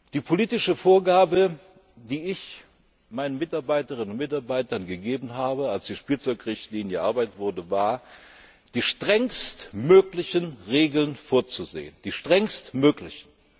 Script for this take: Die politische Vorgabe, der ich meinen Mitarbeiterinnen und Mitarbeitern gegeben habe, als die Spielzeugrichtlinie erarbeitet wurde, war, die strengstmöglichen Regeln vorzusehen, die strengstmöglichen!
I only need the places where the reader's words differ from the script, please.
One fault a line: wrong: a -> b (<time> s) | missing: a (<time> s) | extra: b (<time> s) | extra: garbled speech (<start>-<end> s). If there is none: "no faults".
wrong: der -> die (1.9 s)